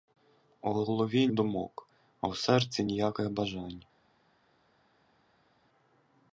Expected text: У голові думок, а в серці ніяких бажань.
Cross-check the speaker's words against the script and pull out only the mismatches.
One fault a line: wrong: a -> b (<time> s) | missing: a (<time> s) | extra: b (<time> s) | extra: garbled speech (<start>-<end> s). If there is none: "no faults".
no faults